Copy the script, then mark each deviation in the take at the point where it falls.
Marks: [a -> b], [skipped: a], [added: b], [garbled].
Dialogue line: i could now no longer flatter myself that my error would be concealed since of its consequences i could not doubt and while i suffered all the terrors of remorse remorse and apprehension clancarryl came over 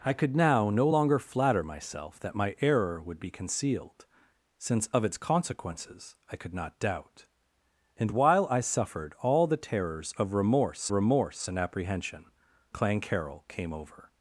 i could now no longer flatter myself that my error would be concealed since of its consequences i could not doubt and while i suffered all the terrors of remorse remorse and apprehension clancarryl came over